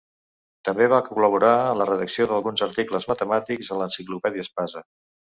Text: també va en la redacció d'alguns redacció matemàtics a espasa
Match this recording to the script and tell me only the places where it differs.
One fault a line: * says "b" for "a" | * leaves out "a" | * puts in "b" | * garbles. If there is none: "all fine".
* puts in "col·laborar"
* says "articles" for "redacció"
* puts in "l'enciclopèdia"